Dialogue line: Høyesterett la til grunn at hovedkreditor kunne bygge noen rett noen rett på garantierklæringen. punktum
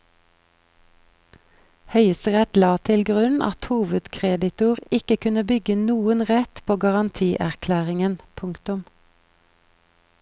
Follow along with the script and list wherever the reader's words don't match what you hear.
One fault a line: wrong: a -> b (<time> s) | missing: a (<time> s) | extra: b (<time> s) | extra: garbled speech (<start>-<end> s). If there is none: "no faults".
extra: ikke (5.0 s)
missing: noen rett (6.7 s)